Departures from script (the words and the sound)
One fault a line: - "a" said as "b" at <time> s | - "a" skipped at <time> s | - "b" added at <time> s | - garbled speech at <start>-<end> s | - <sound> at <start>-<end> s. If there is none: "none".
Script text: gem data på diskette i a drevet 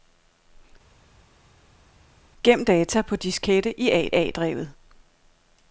- "a" added at 4.1 s